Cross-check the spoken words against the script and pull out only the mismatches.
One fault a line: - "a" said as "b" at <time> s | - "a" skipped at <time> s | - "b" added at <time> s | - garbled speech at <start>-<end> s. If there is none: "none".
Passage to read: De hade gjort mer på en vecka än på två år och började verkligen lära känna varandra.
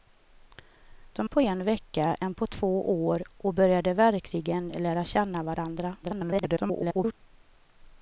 - "hade gjort mer" skipped at 1.3 s
- garbled speech at 6.0-7.1 s